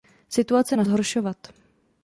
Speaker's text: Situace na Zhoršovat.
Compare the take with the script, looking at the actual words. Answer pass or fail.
pass